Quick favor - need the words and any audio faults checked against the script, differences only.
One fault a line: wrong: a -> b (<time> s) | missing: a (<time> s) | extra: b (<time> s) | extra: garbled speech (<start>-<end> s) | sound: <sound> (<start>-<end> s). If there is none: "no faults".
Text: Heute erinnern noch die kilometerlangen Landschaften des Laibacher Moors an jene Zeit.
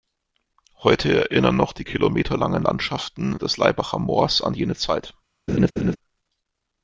sound: laugh (5.5-6.0 s)